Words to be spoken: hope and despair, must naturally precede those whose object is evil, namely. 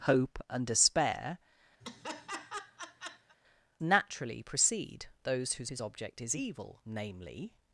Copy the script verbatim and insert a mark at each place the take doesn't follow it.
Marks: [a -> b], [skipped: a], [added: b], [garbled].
hope and despair, [skipped: must] naturally precede those whose [added: whose] object is evil, namely.